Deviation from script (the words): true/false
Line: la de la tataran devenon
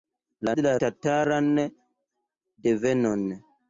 false